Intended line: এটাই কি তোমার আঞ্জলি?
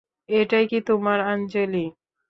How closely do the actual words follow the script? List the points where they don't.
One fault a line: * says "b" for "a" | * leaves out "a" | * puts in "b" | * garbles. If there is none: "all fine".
all fine